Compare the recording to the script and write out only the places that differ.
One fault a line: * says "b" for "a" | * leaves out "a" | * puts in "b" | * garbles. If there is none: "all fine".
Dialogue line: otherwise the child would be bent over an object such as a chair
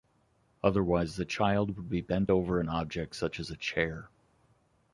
all fine